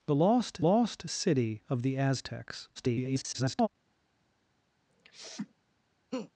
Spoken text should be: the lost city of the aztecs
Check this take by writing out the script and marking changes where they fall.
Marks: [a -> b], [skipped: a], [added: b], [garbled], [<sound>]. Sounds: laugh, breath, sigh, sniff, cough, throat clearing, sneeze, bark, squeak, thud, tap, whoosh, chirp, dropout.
the lost [added: lost] city of the aztecs [garbled] [sniff] [laugh]